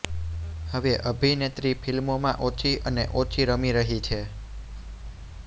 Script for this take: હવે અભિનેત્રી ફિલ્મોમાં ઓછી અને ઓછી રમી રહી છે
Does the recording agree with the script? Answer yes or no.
yes